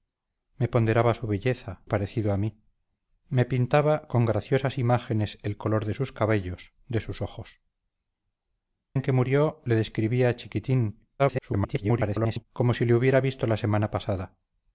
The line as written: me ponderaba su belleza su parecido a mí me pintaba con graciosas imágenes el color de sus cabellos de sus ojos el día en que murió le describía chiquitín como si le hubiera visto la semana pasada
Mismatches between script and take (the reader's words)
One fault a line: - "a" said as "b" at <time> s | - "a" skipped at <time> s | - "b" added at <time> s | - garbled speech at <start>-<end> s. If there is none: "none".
- "su" skipped at 1.8 s
- "el día" skipped at 7.6 s
- garbled speech at 11.2-12.5 s